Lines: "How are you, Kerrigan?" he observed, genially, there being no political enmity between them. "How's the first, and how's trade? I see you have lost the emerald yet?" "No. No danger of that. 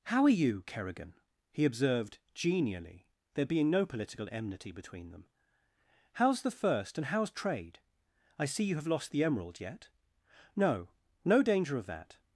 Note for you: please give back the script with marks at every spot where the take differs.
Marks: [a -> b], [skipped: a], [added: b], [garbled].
"How are you, Kerrigan?" he observed, genially, there being no political enmity between them. "How's the first, and how's trade? I see you have lost the emerald yet?" "No. No danger of that.